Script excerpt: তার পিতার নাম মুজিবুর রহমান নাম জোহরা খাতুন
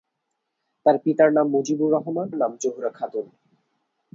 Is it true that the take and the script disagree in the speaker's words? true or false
false